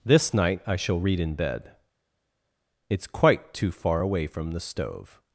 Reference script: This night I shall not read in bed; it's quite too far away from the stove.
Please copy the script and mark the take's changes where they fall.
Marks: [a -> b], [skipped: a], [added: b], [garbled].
This night I shall [skipped: not] read in bed; it's quite too far away from the stove.